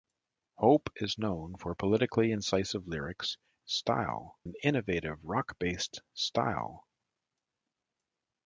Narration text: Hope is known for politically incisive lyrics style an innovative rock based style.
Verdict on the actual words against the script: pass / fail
pass